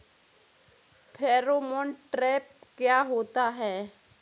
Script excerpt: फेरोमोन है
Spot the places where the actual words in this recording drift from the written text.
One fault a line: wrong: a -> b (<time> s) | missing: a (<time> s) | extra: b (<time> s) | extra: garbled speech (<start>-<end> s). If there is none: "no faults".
extra: ट्रैप क्या होता (2.1 s)